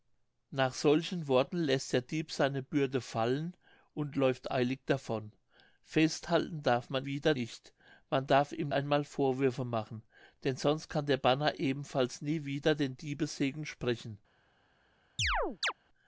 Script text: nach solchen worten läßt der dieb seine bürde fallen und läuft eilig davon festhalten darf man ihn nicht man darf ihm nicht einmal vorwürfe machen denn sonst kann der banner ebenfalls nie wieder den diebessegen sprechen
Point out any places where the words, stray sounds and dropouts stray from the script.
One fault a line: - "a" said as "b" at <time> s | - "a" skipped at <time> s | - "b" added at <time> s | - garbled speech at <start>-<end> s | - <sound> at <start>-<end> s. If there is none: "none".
- "ihn" said as "wieder" at 7.0 s
- "nicht" skipped at 8.7 s
- chirp at 15.2-15.7 s